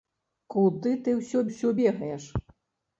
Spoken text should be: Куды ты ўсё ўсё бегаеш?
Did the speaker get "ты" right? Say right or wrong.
right